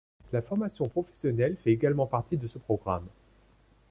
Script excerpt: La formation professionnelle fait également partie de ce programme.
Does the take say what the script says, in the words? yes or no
yes